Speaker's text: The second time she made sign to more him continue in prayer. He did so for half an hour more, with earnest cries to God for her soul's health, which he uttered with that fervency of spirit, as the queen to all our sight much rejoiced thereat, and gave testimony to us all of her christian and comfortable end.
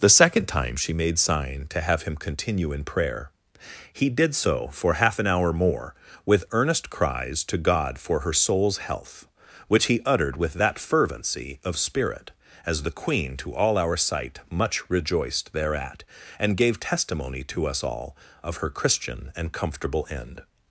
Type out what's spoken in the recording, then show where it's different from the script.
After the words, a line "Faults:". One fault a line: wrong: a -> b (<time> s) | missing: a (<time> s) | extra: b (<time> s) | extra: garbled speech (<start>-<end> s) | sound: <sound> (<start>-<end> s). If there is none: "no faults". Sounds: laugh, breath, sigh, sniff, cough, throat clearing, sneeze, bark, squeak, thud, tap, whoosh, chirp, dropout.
The second time she made sign to have him continue in prayer. He did so for half an hour more, with earnest cries to God for her soul's health, which he uttered with that fervency of spirit, as the queen to all our sight much rejoiced thereat, and gave testimony to us all of her christian and comfortable end.
Faults:
wrong: more -> have (1.8 s)